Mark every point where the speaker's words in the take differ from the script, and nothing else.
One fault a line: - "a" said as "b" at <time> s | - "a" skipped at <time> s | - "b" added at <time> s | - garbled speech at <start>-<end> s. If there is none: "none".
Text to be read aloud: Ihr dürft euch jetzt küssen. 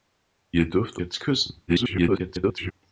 - "euch" skipped at 1.0 s
- garbled speech at 1.7-2.7 s